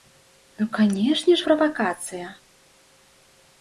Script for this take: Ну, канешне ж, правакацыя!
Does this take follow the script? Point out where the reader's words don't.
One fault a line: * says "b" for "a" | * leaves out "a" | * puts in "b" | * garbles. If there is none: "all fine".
all fine